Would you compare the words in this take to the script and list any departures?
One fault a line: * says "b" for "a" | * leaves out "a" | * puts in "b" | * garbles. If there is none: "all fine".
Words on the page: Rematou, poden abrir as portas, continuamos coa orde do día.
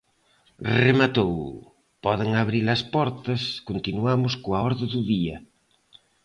all fine